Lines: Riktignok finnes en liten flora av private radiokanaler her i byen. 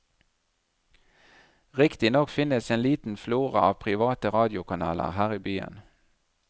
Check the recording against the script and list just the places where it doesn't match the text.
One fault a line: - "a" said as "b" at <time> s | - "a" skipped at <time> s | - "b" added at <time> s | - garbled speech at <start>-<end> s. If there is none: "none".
none